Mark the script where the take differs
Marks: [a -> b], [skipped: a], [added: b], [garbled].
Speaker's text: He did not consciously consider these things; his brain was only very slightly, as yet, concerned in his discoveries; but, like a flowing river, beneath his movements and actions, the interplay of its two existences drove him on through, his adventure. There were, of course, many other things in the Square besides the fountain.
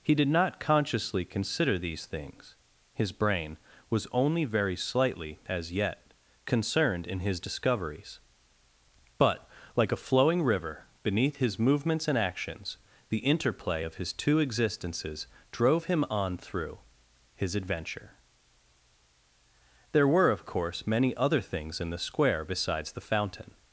He did not consciously consider these things; his brain was only very slightly, as yet, concerned in his discoveries; but, like a flowing river, beneath his movements and actions, the interplay of [its -> his] two existences drove him on through, his adventure. There were, of course, many other things in the Square besides the fountain.